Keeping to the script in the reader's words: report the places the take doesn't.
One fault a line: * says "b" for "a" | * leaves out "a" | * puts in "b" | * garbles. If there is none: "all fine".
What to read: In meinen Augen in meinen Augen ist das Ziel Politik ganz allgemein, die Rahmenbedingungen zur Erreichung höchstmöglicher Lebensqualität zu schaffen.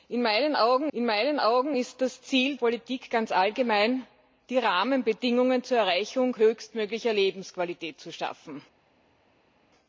all fine